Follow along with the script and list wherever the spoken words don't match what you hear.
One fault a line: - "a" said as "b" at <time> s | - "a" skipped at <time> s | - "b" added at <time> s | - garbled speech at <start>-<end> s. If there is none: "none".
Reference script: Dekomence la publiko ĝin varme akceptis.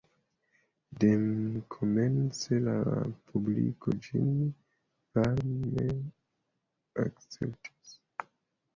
none